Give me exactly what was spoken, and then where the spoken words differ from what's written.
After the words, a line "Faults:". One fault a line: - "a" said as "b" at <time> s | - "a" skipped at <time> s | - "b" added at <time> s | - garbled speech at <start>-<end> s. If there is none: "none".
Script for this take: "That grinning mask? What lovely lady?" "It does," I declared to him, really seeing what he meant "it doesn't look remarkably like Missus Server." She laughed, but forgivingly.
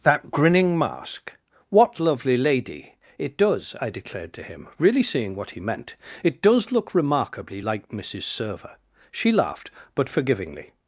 "That grinning mask? What lovely lady?" "It does," I declared to him, really seeing what he meant "it does look remarkably like Missus Server." She laughed, but forgivingly.
Faults:
- "doesn't" said as "does" at 6.4 s